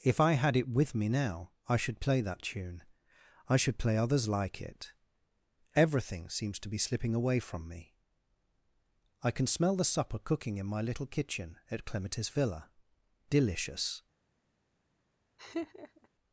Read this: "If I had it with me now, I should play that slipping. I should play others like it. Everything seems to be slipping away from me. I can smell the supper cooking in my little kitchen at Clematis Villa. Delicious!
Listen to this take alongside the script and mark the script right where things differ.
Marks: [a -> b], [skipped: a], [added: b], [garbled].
"If I had it with me now, I should play that [slipping. -> tune] I should play others like it. Everything seems to be slipping away from me. I can smell the supper cooking in my little kitchen at Clematis Villa. Delicious!